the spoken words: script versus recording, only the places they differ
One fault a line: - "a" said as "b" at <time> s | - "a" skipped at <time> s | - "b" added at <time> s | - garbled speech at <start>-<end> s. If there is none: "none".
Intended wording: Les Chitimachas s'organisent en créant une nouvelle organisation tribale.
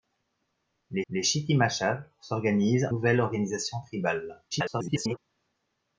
- "les" added at 1.1 s
- "en créant une" skipped at 2.9 s
- garbled speech at 4.5-5.2 s